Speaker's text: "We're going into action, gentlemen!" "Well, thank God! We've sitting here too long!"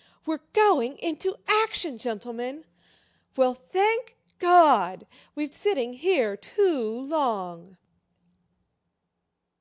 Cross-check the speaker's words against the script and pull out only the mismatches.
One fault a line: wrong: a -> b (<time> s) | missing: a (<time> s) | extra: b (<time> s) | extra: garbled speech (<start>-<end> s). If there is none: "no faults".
no faults